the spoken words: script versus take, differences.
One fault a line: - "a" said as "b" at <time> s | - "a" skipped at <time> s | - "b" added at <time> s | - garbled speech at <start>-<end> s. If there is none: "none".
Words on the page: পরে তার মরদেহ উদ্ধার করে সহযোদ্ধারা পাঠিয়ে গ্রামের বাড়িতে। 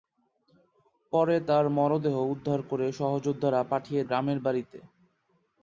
none